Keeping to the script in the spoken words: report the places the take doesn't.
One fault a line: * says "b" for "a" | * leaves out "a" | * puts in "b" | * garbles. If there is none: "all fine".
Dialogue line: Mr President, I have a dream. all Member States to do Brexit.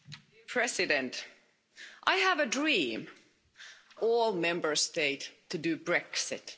all fine